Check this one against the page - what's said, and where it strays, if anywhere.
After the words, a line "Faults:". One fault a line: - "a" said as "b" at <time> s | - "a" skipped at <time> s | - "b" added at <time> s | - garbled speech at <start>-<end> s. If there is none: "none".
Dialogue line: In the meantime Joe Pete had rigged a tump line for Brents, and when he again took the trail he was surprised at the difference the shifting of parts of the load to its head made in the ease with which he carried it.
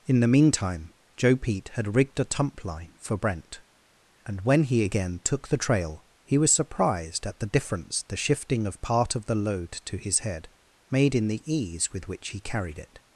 In the meantime Joe Pete had rigged a tump line for Brent, and when he again took the trail he was surprised at the difference the shifting of part of the load to his head made in the ease with which he carried it.
Faults:
- "Brents" said as "Brent" at 3.2 s
- "parts" said as "part" at 8.8 s
- "its" said as "his" at 10.0 s